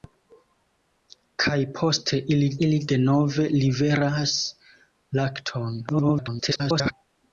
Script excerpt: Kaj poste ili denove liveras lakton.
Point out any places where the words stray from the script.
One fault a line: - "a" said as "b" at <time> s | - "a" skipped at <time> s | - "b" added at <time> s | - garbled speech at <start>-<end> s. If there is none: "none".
- "ili" added at 2.7 s
- garbled speech at 5.9-6.9 s